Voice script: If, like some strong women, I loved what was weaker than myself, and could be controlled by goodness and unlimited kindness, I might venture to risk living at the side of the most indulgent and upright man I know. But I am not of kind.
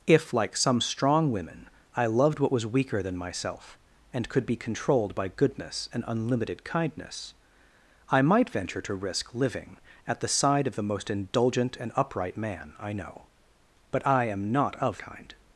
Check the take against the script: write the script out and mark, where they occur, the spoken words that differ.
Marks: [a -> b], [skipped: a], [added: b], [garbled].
If, like some strong women, I loved what was weaker than myself, and could be controlled by goodness and unlimited kindness, I might venture to risk living at the side of the most indulgent and upright man I know. But I am not of kind.